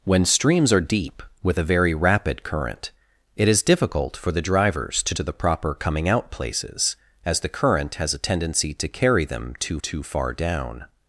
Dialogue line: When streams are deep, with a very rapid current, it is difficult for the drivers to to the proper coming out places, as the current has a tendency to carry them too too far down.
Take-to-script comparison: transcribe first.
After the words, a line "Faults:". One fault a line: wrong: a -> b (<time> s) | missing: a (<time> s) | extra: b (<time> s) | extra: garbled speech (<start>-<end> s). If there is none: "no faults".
When streams are deep, with a very rapid current, it is difficult for the drivers to to the proper coming out places, as the current has a tendency to carry them too too far down.
Faults:
no faults